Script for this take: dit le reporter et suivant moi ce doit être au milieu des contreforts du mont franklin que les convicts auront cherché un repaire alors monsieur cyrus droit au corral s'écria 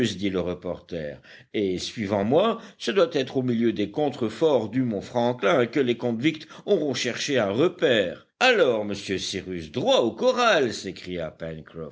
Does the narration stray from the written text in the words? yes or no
no